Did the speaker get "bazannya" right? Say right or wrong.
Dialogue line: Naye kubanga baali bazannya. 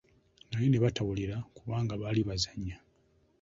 right